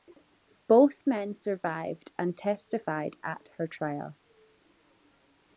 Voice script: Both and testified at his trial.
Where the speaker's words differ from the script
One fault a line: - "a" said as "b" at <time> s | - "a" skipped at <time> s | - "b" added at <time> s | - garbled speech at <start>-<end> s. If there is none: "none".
- "men survived" added at 1.1 s
- "his" said as "her" at 3.6 s